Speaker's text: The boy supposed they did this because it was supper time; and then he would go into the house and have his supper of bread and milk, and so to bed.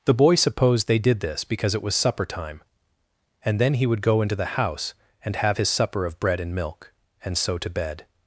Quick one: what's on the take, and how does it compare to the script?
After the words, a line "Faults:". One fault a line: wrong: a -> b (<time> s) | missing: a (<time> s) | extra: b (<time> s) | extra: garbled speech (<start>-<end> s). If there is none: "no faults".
The boy supposed they did this because it was supper time; and then he would go into the house and have his supper of bread and milk, and so to bed.
Faults:
no faults